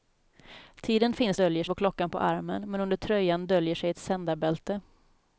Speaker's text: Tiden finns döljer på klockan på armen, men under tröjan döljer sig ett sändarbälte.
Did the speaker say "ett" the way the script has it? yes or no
yes